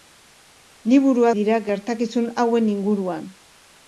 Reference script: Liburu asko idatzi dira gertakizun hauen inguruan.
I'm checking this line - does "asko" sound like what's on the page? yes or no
no